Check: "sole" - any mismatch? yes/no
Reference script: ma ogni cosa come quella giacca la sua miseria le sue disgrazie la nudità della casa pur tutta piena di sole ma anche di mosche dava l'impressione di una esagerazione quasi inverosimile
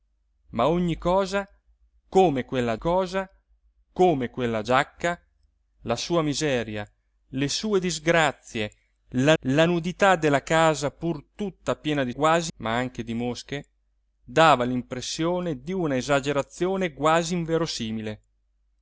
yes